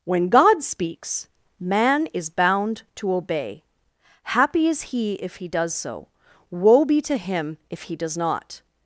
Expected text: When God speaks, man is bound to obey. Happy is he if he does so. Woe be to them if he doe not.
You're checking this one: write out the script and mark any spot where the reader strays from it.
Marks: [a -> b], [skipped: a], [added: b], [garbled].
When God speaks, man is bound to obey. Happy is he if he does so. Woe be to [them -> him] if he [doe -> does] not.